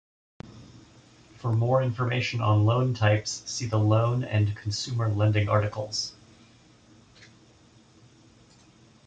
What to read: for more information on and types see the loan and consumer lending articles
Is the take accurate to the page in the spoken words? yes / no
no